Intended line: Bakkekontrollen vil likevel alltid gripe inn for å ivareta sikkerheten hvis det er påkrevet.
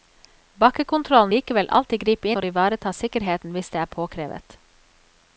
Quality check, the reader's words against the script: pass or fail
fail